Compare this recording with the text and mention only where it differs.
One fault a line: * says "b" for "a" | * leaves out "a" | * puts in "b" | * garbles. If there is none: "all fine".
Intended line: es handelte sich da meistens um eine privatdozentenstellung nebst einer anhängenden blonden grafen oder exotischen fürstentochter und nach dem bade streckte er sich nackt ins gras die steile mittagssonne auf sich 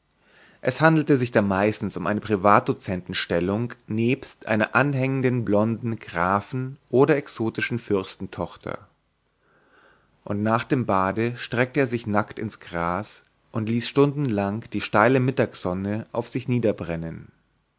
* puts in "und ließ stundenlang"